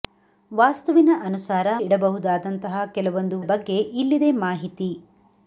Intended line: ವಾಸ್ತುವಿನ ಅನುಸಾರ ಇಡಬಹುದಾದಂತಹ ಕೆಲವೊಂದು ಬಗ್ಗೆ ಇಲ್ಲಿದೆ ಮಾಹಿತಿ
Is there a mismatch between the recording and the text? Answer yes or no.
no